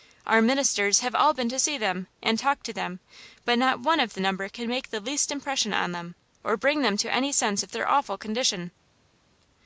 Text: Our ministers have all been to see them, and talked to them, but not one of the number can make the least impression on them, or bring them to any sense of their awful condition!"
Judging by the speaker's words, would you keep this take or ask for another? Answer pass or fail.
pass